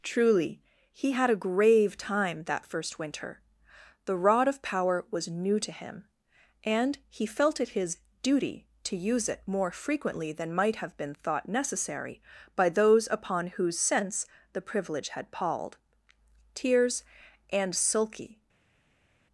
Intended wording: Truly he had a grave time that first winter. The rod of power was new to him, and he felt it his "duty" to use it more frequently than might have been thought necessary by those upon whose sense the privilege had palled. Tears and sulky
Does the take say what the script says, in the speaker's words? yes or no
yes